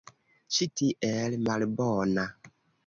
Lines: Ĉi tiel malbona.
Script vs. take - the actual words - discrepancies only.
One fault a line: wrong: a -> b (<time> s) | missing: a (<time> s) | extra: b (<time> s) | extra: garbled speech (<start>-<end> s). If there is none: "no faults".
no faults